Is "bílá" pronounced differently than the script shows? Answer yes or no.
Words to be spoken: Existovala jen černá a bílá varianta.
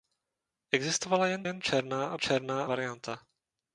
yes